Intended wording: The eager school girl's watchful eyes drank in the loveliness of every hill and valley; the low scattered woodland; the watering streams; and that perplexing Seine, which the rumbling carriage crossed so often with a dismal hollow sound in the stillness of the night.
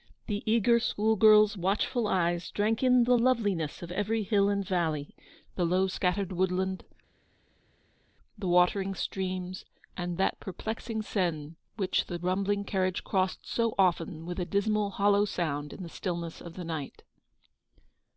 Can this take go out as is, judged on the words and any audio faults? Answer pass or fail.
pass